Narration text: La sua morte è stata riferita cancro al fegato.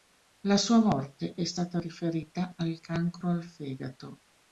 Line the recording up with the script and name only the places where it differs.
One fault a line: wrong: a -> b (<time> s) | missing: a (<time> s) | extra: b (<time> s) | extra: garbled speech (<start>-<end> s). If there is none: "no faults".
extra: al (2.6 s)